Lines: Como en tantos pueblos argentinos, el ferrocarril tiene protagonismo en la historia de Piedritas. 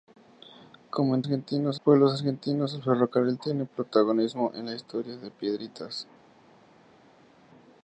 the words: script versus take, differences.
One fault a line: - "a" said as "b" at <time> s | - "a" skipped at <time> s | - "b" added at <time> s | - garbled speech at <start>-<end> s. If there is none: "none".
- "tantos" said as "argentinos" at 1.3 s